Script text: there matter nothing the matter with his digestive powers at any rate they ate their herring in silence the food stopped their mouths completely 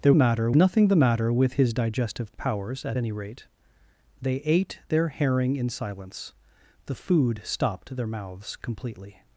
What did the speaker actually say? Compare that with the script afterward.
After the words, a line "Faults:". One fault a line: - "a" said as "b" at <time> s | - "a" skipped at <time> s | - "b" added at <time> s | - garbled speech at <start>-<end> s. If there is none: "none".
there matter nothing the matter with his digestive powers at any rate they ate their herring in silence the food stopped their mouths completely
Faults:
none